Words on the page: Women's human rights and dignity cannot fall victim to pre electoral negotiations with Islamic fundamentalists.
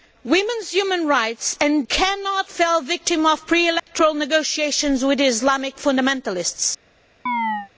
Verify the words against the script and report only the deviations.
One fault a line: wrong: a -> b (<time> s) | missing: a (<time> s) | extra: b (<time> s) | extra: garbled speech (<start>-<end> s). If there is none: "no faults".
missing: dignity (1.9 s)